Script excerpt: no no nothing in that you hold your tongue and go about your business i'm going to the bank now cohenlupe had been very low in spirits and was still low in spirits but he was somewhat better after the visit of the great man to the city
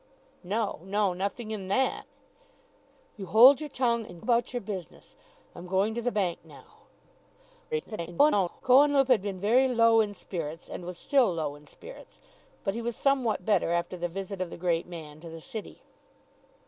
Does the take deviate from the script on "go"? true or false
true